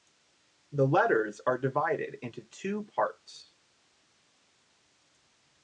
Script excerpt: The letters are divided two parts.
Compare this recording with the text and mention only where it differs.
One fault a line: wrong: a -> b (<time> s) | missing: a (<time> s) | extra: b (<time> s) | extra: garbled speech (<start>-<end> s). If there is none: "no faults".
extra: into (2.2 s)